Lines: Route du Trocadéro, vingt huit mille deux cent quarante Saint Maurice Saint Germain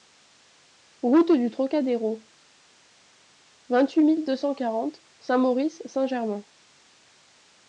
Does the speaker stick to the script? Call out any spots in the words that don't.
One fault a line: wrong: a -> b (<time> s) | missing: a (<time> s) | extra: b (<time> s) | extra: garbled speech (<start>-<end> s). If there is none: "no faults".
no faults